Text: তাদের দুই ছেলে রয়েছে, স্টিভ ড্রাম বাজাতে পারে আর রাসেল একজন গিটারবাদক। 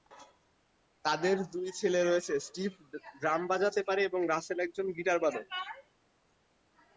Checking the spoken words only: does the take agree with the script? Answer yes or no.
no